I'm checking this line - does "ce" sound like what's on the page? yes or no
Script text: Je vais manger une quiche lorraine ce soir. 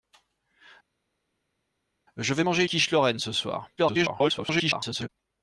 yes